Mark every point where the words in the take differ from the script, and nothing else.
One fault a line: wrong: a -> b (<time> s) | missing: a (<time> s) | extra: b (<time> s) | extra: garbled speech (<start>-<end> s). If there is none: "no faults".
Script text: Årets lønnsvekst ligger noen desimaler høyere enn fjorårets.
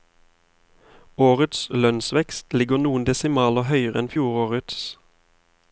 no faults